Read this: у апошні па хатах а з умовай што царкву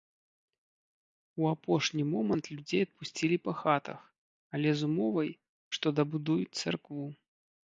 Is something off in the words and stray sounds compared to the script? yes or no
yes